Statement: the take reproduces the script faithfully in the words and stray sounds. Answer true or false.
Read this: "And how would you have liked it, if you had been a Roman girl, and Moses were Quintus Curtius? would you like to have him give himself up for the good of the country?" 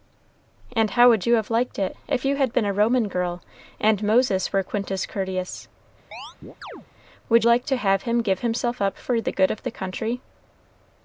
false